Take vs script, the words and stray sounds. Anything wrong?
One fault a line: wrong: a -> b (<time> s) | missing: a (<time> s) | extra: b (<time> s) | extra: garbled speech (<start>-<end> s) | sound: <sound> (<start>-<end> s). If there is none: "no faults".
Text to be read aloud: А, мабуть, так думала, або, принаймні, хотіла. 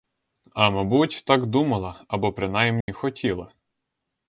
sound: dropout (2.8-2.9 s)